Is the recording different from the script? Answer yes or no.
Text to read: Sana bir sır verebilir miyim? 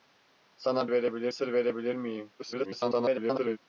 yes